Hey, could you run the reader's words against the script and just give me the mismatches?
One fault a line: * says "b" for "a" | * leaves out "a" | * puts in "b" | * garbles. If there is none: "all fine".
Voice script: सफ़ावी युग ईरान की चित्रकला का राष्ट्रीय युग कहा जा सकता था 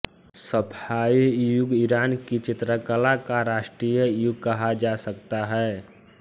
* says "है" for "था"